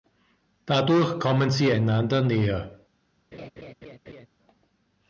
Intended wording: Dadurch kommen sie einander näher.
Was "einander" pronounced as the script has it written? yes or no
yes